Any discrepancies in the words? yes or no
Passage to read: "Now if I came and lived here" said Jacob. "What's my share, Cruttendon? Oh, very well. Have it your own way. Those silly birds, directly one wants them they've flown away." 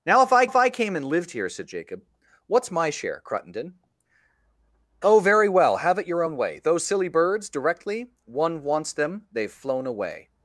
yes